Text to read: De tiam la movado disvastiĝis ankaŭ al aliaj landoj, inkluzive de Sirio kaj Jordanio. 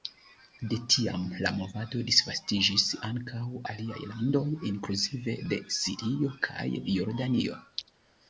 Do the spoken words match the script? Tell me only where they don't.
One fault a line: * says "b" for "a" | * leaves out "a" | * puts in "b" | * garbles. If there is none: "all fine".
* leaves out "al"